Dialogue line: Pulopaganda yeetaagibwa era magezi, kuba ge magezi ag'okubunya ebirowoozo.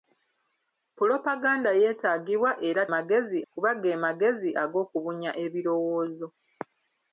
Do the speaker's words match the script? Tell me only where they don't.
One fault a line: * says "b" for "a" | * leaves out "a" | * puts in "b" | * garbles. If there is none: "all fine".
all fine